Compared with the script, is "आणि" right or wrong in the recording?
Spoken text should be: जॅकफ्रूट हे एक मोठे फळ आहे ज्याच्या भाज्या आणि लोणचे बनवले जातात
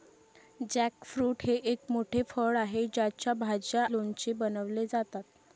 wrong